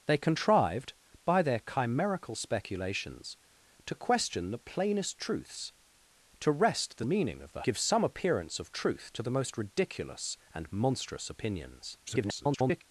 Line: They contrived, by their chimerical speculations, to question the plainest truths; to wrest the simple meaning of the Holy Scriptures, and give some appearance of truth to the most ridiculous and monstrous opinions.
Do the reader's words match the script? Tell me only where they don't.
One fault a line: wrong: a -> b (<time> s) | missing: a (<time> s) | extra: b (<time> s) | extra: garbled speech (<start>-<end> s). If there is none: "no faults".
missing: simple (7.0 s)
missing: Holy Scriptures and (7.6 s)
extra: garbled speech (12.1-12.8 s)